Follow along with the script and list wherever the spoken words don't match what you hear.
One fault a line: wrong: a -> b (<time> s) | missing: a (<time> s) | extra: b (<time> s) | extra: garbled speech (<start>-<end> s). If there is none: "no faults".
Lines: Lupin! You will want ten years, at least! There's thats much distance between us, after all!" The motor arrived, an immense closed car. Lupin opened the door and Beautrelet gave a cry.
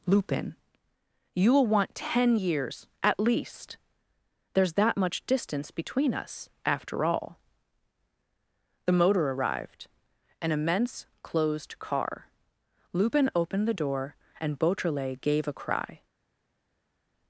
wrong: thats -> that (4.7 s)